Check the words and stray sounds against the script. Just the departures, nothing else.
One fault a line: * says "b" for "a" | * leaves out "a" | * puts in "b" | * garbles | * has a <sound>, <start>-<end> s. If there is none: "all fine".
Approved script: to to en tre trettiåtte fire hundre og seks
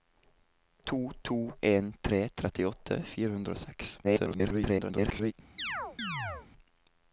* garbles
* has a chirp, 5.6-6.5 s